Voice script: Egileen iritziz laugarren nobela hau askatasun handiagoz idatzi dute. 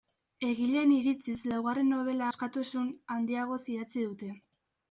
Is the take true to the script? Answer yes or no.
no